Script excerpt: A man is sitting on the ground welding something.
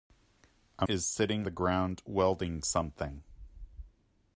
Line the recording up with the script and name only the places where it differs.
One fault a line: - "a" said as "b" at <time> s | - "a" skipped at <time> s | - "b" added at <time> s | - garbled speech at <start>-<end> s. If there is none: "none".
- "man" skipped at 0.9 s
- "on" skipped at 1.5 s